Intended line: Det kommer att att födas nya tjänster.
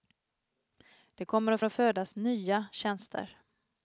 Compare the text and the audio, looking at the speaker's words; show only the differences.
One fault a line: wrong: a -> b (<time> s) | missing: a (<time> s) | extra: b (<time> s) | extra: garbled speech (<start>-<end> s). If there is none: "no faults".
no faults